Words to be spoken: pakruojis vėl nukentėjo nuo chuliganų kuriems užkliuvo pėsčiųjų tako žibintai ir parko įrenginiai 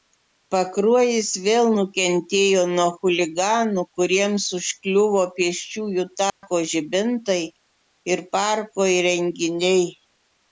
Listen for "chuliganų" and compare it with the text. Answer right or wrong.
right